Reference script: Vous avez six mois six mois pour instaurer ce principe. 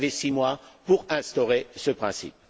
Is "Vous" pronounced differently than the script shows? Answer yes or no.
no